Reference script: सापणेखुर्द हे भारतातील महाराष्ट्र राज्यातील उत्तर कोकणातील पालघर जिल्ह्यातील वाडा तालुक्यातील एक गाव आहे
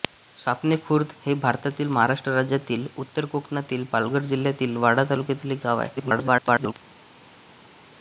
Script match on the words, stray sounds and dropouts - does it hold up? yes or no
no